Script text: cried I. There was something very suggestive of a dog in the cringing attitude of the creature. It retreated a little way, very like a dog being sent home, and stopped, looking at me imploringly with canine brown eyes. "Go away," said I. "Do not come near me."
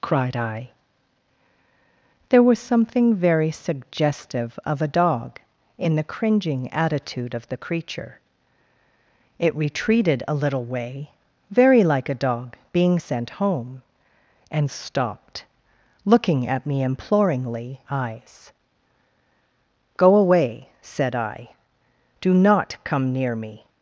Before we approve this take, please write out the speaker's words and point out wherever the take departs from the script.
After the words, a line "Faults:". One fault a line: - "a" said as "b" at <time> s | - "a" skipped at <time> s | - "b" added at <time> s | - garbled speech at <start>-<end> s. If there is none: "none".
cried I. There was something very suggestive of a dog in the cringing attitude of the creature. It retreated a little way, very like a dog being sent home, and stopped, looking at me imploringly eyes. "Go away," said I. "Do not come near me."
Faults:
- "with canine brown" skipped at 17.8 s